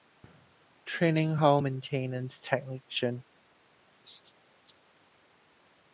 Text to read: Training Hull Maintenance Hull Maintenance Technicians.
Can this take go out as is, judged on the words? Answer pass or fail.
fail